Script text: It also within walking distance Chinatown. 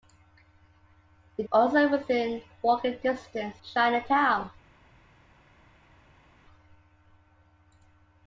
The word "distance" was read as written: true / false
true